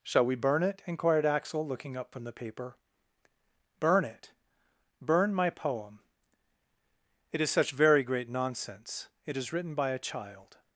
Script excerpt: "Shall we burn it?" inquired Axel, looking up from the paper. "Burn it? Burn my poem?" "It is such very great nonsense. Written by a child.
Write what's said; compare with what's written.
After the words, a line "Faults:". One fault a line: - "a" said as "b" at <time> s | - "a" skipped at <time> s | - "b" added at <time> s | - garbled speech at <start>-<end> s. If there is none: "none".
"Shall we burn it?" inquired Axel, looking up from the paper. "Burn it? Burn my poem?" "It is such very great nonsense. It is written by a child.
Faults:
- "It is" added at 9.2 s